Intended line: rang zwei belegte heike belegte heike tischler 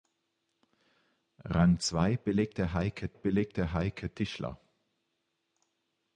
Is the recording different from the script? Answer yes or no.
no